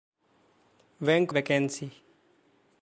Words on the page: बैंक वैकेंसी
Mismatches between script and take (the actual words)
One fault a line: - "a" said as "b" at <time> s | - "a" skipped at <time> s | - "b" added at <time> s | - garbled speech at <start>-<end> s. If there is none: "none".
none